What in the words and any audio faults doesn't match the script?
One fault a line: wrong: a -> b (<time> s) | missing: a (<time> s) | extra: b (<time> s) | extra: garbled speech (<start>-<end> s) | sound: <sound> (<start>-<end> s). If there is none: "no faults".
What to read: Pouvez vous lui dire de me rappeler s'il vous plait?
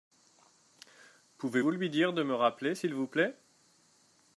no faults